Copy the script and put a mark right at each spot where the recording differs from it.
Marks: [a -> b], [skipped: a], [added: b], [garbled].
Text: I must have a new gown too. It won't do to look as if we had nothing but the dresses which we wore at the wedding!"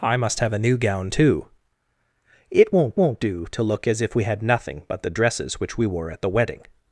I must have a new gown too. It won't [added: won't] do to look as if we had nothing but the dresses which we wore at the wedding!"